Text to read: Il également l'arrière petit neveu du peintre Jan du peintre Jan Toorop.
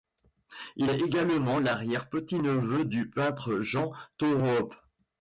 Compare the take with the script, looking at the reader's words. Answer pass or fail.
fail